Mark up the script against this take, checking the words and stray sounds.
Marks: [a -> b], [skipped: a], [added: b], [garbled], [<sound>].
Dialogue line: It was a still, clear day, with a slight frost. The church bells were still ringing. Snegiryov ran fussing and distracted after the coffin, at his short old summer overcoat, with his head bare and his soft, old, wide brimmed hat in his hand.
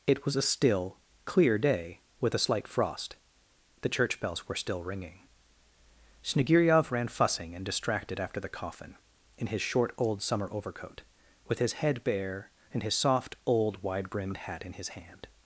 It was a still, clear day, with a slight frost. The church bells were still ringing. Snegiryov ran fussing and distracted after the coffin, [at -> in] his short old summer overcoat, with his head bare and his soft, old, wide brimmed hat in his hand.